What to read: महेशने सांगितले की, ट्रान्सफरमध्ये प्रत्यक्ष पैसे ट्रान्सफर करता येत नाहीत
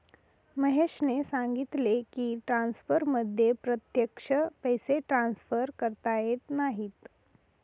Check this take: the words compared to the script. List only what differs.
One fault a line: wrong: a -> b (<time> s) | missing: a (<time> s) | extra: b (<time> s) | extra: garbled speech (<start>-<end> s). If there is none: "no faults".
no faults